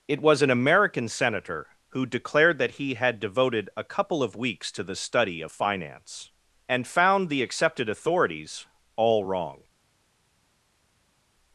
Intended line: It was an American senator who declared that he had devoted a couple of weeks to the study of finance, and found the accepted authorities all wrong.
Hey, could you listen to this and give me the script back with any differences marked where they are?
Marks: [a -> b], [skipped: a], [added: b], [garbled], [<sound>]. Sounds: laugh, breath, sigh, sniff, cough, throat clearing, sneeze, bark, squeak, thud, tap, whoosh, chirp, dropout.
It was an American senator who declared that he had devoted a couple of weeks to the study of finance, and found the accepted authorities all wrong.